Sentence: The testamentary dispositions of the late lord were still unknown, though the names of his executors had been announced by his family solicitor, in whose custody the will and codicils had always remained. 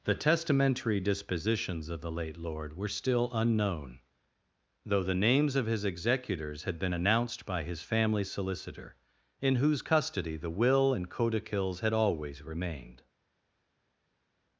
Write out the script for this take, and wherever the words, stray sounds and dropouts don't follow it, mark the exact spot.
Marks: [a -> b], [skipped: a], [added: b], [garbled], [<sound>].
The testamentary dispositions of the late lord were still unknown, though the names of his executors had been announced by his family solicitor, in whose custody the will and codicils had always remained.